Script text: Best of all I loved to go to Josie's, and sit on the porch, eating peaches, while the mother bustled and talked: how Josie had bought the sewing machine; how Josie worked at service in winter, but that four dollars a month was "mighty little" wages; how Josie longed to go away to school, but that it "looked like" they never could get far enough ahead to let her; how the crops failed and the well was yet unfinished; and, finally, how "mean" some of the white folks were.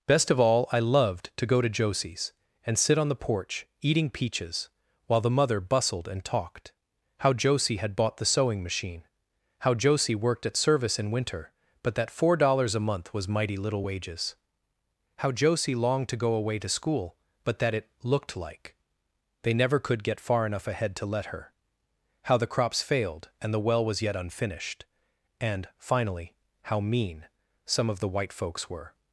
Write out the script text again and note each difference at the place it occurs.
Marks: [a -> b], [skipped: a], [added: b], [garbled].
Best of all I loved to go to Josie's, and sit on the porch, eating peaches, while the mother bustled and talked: how Josie had bought the sewing machine; how Josie worked at service in winter, but that four dollars a month was "mighty little" wages; how Josie longed to go away to school, but that it "looked like" they never could get far enough ahead to let her; how the crops failed and the well was yet unfinished; and, finally, how "mean" some of the white folks were.